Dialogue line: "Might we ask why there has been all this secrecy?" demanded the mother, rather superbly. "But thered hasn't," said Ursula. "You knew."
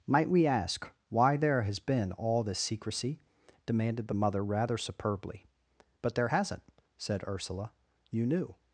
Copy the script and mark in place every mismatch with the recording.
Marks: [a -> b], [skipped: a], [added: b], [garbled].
"Might we ask why there has been all this secrecy?" demanded the mother, rather superbly. "But [thered -> there] hasn't," said Ursula. "You knew."